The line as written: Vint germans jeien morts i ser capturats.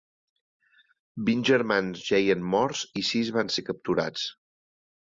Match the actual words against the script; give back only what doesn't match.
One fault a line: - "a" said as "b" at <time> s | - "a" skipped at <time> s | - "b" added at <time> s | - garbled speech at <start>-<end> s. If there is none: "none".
- "sis van" added at 3.1 s